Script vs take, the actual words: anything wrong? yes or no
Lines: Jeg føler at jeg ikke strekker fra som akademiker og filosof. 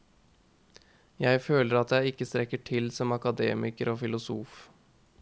yes